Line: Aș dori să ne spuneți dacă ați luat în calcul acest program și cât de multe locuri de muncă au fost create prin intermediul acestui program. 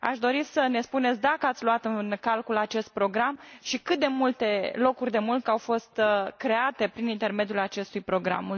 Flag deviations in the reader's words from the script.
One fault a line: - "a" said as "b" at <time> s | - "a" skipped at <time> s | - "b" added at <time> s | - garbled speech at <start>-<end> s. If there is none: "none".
none